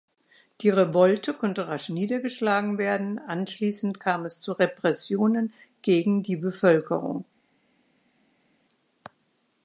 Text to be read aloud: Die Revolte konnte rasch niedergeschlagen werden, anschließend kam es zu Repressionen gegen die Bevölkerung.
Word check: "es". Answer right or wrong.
right